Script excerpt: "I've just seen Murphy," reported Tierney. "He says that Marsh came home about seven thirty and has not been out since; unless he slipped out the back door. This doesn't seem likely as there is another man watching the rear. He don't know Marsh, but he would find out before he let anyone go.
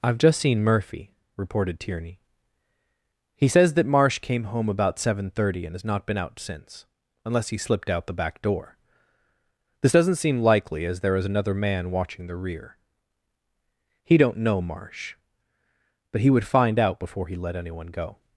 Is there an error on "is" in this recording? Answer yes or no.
no